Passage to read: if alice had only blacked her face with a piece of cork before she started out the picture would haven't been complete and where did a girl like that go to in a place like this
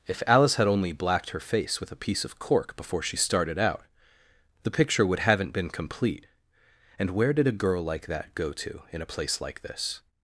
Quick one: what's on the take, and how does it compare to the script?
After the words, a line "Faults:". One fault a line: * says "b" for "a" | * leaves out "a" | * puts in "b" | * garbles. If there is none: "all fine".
if alice had only blacked her face with a piece of cork before she started out the picture would haven't been complete and where did a girl like that go to in a place like this
Faults:
all fine